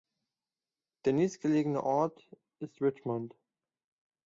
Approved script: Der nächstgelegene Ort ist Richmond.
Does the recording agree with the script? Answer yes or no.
yes